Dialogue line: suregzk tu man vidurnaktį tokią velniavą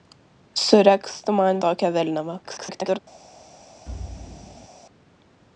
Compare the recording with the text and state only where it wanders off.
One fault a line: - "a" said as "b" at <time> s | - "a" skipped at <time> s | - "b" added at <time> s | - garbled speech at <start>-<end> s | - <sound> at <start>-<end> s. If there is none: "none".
- "vidurnaktį" skipped at 1.6 s
- garbled speech at 2.4-3.0 s
- thud at 3.9-4.7 s